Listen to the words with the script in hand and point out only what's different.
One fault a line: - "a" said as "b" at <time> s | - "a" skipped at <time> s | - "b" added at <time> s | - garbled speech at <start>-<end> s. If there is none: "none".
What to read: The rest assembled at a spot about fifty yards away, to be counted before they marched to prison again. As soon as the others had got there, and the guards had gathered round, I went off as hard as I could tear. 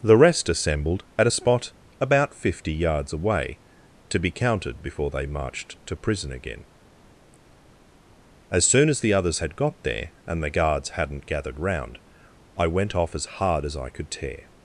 - "had" said as "hadn't" at 10.9 s